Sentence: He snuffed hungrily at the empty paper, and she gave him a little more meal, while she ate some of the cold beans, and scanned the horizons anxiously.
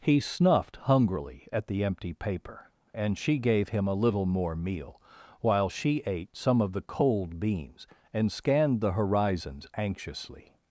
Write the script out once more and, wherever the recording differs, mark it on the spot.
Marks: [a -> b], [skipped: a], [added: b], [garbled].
He snuffed hungrily at the empty paper, and she gave him a little more meal, while she ate some of the cold beans, and scanned the horizons anxiously.